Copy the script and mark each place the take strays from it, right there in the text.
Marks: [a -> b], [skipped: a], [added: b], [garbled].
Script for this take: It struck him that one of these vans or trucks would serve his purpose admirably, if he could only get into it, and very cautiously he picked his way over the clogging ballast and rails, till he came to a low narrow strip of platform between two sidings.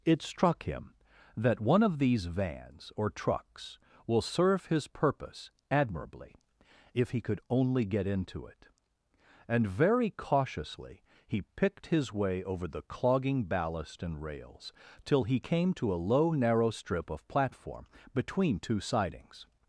It struck him that one of these vans or trucks [would -> will] serve his purpose admirably, if he could only get into it, and very cautiously he picked his way over the clogging ballast and rails, till he came to a low narrow strip of platform between two sidings.